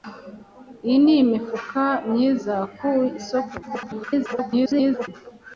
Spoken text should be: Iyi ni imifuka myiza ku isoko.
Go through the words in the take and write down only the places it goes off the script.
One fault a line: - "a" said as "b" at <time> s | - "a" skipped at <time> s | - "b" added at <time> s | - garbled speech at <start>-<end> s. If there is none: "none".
- garbled speech at 3.6-5.1 s